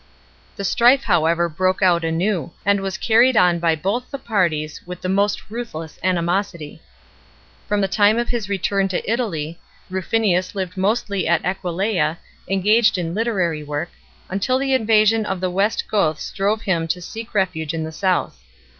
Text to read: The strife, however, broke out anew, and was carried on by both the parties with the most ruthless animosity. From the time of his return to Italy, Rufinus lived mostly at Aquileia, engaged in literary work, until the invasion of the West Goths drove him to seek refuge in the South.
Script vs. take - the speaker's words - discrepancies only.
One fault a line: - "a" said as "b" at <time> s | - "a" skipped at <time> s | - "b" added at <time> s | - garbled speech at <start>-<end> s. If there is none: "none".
none